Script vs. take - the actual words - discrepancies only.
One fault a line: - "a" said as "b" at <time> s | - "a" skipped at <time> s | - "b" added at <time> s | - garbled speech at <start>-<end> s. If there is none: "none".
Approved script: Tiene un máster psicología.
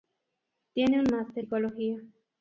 none